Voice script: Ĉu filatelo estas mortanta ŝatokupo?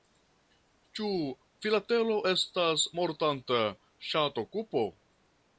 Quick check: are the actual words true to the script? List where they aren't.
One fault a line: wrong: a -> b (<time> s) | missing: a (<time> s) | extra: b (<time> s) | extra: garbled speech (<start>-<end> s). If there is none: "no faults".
no faults